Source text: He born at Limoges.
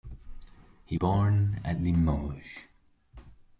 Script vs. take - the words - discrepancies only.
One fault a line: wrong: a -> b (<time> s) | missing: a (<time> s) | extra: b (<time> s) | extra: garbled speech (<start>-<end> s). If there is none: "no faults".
no faults